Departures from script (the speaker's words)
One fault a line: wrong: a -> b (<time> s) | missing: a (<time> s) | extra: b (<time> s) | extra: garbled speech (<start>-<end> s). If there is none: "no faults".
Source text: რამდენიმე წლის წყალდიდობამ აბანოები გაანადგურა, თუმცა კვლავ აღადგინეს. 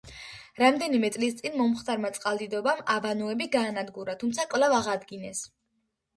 extra: წინ მომხდარმა (1.4 s)